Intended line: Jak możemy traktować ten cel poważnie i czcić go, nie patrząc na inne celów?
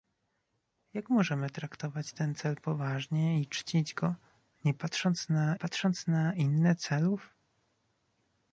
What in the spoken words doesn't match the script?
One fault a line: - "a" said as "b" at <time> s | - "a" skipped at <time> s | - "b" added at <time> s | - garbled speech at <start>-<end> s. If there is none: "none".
- "patrząc na" added at 5.5 s